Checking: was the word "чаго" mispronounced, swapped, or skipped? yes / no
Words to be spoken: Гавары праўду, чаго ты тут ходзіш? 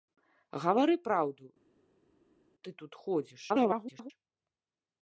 yes